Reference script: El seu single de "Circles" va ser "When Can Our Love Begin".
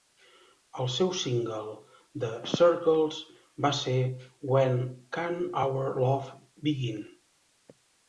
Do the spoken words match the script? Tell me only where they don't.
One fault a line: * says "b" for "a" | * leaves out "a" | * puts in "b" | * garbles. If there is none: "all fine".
all fine